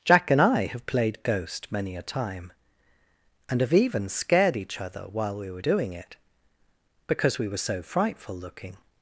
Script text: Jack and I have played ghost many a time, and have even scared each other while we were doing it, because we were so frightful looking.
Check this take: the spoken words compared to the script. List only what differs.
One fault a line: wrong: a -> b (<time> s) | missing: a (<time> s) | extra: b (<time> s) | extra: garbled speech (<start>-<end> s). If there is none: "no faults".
no faults